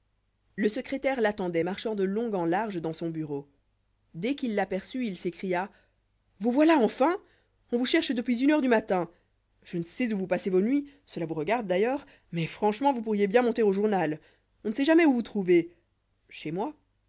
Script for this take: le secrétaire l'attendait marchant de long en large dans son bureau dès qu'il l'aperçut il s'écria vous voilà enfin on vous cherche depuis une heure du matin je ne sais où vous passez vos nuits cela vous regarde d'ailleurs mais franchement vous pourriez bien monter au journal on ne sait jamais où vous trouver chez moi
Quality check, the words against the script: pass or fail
pass